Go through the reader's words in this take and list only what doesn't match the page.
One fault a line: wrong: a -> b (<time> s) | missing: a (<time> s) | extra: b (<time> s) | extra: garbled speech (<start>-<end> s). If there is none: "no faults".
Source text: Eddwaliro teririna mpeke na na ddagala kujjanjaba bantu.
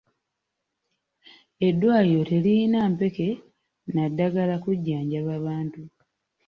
missing: na (4.0 s)